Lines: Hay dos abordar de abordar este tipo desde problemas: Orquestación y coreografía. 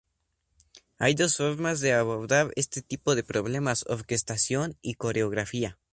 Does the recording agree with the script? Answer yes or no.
no